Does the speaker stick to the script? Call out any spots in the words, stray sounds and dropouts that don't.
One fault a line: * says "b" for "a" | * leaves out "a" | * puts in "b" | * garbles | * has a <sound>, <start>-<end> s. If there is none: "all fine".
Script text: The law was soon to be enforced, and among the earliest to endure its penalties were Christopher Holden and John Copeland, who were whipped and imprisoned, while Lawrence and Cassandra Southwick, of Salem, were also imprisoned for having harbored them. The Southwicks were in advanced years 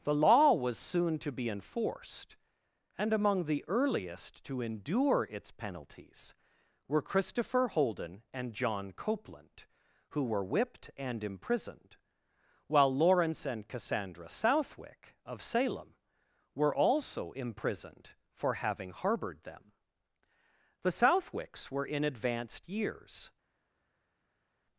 all fine